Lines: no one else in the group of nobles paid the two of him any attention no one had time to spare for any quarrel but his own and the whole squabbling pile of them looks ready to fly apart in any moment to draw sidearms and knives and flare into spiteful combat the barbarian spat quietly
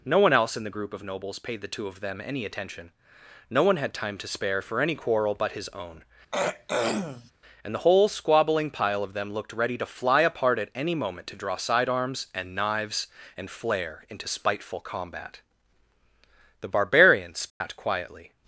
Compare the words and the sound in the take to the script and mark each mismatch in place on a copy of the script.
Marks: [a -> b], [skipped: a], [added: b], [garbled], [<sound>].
no one else in the group of nobles paid the two of [him -> them] any attention no one had time to spare for any quarrel but his own [throat clearing] and the whole squabbling pile of them [looks -> looked] ready to fly apart [in -> at] any moment to draw sidearms and knives and flare into spiteful combat the barbarian spat [dropout] quietly